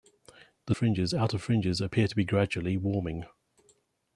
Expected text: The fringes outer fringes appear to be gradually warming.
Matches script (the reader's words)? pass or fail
pass